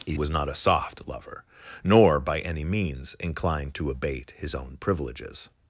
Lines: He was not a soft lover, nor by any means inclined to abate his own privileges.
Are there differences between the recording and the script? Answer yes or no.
no